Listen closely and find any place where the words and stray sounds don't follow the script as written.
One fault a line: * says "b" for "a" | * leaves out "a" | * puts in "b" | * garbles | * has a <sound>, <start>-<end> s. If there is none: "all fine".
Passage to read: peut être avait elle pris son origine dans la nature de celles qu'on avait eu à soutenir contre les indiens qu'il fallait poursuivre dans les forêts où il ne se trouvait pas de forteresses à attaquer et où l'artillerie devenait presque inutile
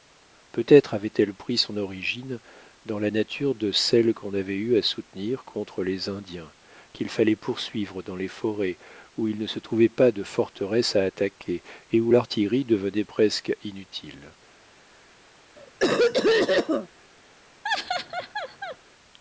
* has a cough, 15.6-16.9 s
* has a laugh, 17.6-18.8 s